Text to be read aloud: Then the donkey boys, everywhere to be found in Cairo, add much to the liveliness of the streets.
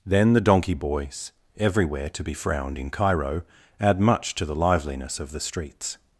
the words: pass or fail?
fail